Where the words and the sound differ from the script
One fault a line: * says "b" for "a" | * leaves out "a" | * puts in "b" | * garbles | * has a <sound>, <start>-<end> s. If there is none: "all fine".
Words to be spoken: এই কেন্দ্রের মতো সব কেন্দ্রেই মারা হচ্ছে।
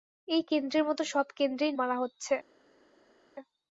all fine